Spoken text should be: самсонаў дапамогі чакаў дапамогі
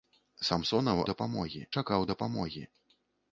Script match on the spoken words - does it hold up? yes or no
yes